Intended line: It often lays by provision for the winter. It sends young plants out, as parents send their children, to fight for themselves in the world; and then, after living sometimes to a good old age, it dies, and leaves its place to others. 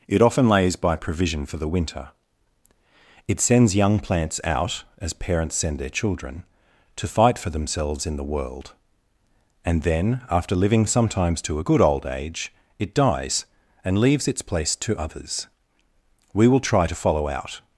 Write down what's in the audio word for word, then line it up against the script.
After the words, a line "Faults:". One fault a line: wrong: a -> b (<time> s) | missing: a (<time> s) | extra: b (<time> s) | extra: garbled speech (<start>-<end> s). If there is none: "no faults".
It often lays by provision for the winter. It sends young plants out, as parents send their children, to fight for themselves in the world; and then, after living sometimes to a good old age, it dies, and leaves its place to others. We will try to follow out
Faults:
extra: We will try to follow out (16.3 s)